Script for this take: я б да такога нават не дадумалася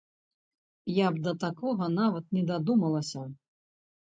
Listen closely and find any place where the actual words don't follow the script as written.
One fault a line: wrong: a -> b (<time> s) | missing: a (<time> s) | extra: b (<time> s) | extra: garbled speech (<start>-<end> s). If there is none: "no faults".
no faults